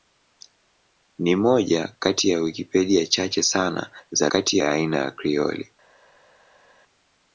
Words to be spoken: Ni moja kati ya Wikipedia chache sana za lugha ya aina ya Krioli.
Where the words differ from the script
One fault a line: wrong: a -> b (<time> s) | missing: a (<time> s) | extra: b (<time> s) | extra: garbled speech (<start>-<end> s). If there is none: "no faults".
wrong: lugha -> kati (4.3 s)